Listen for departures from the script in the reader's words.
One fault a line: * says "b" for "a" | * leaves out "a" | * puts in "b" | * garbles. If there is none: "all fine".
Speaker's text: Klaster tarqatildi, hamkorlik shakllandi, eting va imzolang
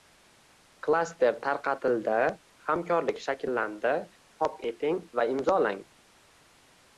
* puts in "chop"